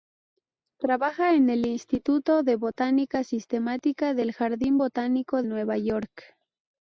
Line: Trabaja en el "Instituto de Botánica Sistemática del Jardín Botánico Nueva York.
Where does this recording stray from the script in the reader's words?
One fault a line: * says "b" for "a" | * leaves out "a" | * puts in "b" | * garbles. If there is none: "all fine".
all fine